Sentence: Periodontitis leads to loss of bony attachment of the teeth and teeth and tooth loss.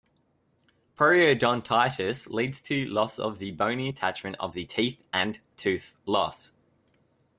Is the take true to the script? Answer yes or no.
no